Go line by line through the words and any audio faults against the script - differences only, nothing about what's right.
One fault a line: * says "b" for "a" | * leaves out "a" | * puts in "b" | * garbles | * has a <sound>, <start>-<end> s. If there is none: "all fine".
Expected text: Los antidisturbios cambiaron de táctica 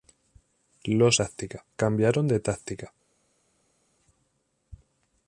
* says "táctica" for "antidisturbios"